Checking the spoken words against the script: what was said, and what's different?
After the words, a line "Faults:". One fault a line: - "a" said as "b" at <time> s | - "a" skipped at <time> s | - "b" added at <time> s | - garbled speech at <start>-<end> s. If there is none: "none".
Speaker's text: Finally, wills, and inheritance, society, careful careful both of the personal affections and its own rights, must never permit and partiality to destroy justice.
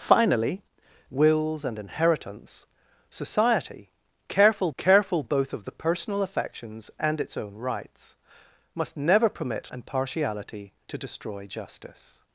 Finally, wills, and inheritance, society, careful careful both of the personal affections and its own rights, must never permit and partiality to destroy justice.
Faults:
none